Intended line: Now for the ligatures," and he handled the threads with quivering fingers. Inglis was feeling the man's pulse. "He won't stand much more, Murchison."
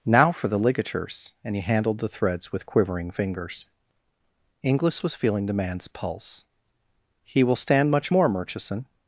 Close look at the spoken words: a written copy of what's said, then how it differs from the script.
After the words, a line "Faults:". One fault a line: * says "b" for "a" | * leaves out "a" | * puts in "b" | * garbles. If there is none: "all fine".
Now for the ligatures," and he handled the threads with quivering fingers. Inglis was feeling the man's pulse. "He will stand much more, Murchison."
Faults:
* says "will" for "won't"